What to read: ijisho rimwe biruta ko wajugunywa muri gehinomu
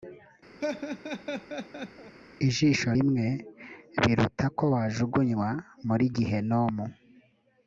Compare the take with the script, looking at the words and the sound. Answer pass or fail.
fail